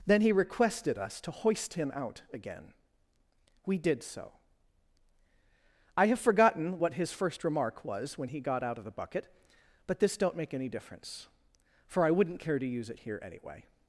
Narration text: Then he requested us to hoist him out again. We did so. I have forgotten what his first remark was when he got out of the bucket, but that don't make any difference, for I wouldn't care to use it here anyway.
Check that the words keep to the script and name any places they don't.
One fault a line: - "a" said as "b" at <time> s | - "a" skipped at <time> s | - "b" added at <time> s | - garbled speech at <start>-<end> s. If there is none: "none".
- "that" said as "this" at 10.0 s